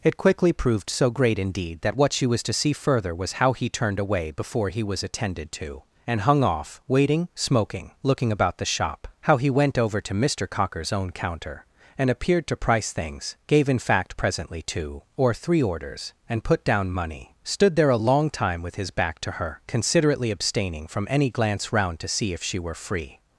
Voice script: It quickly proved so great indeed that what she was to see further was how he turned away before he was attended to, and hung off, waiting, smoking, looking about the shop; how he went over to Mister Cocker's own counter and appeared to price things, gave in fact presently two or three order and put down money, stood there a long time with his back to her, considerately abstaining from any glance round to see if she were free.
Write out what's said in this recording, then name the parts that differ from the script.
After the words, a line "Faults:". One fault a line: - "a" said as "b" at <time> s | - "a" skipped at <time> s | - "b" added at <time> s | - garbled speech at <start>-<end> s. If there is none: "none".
It quickly proved so great indeed that what she was to see further was how he turned away before he was attended to, and hung off, waiting, smoking, looking about the shop; how he went over to Mister Cocker's own counter and appeared to price things, gave in fact presently two or three orders and put down money, stood there a long time with his back to her, considerately abstaining from any glance round to see if she were free.
Faults:
- "order" said as "orders" at 15.6 s